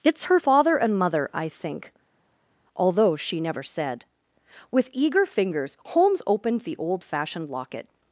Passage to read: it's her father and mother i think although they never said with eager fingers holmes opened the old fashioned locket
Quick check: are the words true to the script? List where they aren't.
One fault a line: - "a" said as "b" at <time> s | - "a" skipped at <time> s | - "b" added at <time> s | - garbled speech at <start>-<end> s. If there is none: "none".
- "they" said as "she" at 3.2 s